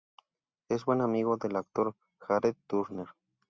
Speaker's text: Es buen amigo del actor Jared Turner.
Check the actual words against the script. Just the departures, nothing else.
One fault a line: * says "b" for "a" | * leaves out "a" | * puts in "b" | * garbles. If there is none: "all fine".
all fine